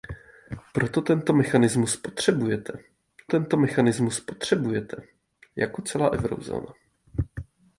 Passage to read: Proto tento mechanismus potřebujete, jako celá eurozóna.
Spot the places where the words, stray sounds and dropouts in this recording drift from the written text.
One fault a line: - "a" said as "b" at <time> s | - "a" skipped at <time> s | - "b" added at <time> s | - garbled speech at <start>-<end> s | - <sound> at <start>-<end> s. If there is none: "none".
- "tento mechanismus potřebujete" added at 3.2 s